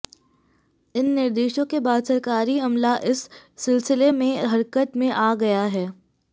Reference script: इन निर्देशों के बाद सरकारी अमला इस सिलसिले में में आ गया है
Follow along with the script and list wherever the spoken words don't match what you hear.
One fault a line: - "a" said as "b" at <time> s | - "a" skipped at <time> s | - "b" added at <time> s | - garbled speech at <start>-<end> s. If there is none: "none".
- "हरकत" added at 4.4 s